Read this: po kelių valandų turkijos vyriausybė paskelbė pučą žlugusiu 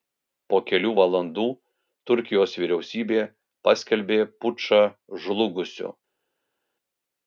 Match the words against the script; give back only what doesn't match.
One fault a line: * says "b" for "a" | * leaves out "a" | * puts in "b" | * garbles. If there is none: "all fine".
all fine